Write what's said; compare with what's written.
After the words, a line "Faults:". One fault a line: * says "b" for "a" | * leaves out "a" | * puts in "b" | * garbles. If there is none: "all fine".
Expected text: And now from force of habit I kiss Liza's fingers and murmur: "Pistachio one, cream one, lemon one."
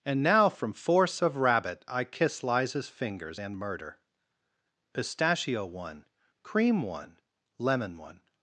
And now from force of rabbit I kiss Liza's fingers and murder: "Pistachio one, cream one, lemon one."
Faults:
* says "rabbit" for "habit"
* says "murder" for "murmur"